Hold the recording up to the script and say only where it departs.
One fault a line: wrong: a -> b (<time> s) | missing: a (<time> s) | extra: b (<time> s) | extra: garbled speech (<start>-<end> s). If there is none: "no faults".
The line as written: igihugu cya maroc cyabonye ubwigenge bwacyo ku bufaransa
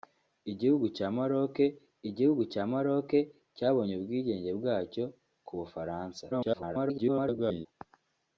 extra: igihugu cya maroc (2.1 s)
extra: garbled speech (6.3-7.7 s)